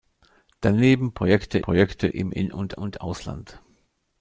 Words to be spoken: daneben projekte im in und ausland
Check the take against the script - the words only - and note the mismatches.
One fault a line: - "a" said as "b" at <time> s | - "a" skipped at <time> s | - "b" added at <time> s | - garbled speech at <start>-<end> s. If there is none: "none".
- "projekte" added at 1.6 s
- "und" added at 2.7 s